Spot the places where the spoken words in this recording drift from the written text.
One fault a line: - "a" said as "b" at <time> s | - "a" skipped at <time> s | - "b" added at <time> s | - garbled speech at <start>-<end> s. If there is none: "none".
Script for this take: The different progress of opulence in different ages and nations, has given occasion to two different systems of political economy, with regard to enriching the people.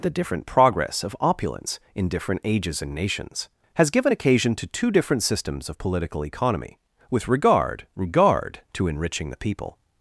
- "regard" added at 7.9 s